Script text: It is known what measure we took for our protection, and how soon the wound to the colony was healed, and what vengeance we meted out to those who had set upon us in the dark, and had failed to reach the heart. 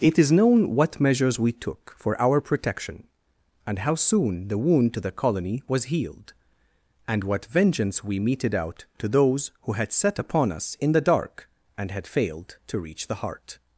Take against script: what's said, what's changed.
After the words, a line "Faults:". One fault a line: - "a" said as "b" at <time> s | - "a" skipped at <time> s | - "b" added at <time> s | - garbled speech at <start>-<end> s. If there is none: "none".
It is known what measures we took for our protection, and how soon the wound to the colony was healed, and what vengeance we meted out to those who had set upon us in the dark, and had failed to reach the heart.
Faults:
- "measure" said as "measures" at 1.0 s